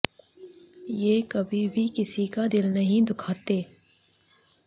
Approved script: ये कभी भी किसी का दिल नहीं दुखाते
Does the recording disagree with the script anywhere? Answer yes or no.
no